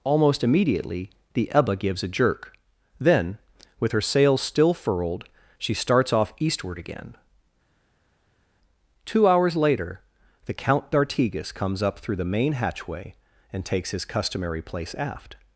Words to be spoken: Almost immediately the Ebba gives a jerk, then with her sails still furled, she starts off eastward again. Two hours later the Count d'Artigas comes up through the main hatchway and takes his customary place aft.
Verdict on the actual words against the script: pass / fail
pass